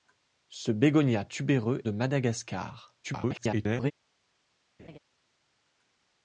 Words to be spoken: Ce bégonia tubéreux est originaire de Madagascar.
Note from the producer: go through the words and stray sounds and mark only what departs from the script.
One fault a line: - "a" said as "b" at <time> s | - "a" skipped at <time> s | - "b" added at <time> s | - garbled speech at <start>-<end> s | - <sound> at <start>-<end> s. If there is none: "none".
- "est originaire" skipped at 1.8 s
- garbled speech at 3.0-3.9 s
- laugh at 4.8-5.0 s